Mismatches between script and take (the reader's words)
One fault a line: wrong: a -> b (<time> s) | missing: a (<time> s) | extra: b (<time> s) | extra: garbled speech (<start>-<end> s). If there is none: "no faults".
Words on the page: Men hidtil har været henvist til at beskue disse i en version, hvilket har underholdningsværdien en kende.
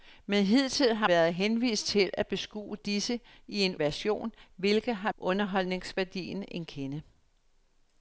no faults